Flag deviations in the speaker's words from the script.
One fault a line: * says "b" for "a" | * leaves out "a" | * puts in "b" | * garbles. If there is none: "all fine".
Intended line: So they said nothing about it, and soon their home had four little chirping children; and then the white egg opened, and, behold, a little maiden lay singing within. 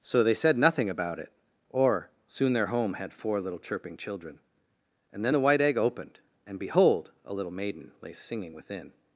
* says "or" for "and"